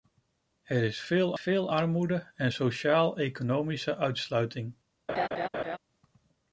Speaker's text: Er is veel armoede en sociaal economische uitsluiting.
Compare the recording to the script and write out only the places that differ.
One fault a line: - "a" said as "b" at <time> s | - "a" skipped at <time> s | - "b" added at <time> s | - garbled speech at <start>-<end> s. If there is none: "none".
- "veel" added at 1.4 s